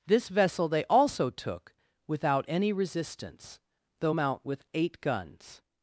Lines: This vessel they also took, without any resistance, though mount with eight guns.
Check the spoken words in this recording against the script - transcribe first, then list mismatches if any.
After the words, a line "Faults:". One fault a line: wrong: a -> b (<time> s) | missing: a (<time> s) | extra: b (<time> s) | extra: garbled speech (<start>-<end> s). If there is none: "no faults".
This vessel they also took, without any resistance, though mount with eight guns.
Faults:
no faults